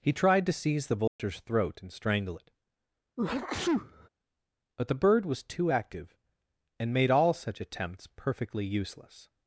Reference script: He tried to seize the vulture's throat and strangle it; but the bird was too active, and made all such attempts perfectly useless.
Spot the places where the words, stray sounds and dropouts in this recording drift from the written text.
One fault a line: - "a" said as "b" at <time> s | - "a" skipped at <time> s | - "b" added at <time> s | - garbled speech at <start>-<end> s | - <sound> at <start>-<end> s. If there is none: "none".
- dropout at 1.1-1.2 s
- sneeze at 3.2-4.1 s